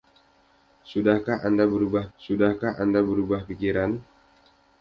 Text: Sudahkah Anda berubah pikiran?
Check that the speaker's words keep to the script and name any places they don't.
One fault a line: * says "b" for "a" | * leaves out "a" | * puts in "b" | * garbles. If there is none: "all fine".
* puts in "sudahkah Anda berubah"